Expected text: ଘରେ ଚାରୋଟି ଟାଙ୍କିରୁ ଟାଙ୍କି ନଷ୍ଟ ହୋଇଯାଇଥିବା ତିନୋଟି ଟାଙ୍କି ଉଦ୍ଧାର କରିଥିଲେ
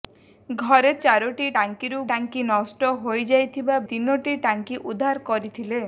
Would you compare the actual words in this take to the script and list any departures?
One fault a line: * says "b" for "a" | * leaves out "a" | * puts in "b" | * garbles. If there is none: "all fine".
all fine